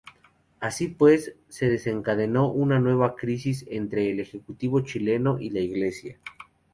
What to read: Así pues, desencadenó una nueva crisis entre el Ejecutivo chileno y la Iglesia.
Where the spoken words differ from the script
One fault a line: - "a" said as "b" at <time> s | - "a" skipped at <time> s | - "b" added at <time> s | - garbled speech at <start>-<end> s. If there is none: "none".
- "se" added at 1.5 s